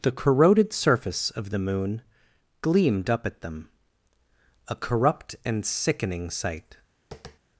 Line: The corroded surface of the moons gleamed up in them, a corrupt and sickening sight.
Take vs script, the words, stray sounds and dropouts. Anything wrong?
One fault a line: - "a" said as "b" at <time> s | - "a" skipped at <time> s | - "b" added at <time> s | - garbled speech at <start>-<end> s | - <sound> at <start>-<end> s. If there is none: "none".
- "moons" said as "moon" at 1.6 s
- "in" said as "at" at 3.3 s
- tap at 7.1-7.4 s